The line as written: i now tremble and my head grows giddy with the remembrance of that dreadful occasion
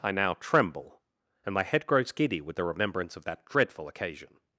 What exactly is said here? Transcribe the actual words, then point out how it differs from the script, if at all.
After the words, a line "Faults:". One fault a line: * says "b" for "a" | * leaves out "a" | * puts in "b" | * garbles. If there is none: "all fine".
i now tremble and my head grows giddy with the remembrance of that dreadful occasion
Faults:
all fine